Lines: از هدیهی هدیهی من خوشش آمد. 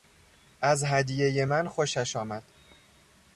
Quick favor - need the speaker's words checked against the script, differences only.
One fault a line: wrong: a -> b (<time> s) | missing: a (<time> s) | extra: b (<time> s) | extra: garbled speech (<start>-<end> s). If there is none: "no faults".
missing: هدیهی (1.4 s)